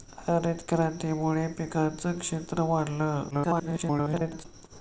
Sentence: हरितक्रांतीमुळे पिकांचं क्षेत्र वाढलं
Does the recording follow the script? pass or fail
fail